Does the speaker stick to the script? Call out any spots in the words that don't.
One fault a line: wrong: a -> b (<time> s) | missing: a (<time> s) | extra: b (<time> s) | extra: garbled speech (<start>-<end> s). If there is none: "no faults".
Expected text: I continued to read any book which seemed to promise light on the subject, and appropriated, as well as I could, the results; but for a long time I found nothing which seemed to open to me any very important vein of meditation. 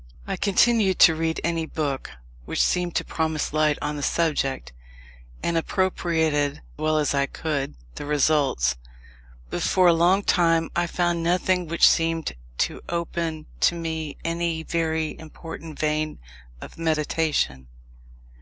missing: as (6.6 s)